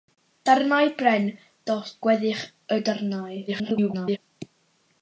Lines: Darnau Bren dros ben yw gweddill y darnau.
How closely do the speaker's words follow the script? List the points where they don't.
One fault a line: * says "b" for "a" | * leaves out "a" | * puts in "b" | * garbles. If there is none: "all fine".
* leaves out "dros ben yw"
* garbles